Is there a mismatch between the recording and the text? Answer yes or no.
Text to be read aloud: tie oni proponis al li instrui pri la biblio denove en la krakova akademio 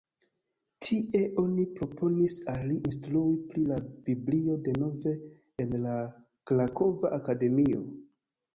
no